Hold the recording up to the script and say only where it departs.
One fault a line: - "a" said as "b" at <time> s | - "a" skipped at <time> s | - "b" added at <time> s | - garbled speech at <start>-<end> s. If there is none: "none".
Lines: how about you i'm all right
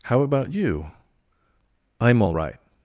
none